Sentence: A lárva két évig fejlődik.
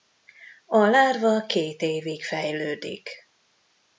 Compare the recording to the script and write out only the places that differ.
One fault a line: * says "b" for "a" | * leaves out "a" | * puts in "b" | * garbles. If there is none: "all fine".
all fine